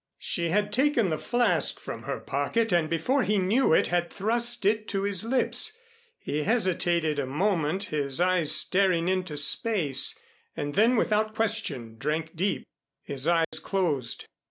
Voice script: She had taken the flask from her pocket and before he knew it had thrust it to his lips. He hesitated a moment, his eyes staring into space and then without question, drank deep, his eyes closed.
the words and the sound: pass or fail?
fail